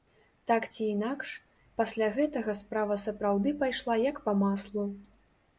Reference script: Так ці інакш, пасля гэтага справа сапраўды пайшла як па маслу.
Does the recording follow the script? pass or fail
pass